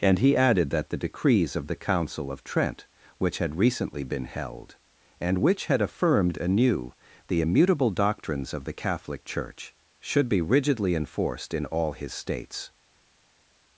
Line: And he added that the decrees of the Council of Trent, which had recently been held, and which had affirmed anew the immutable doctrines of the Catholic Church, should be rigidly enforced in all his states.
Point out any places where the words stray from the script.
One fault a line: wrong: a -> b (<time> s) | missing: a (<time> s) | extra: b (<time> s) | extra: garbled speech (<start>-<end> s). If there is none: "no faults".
no faults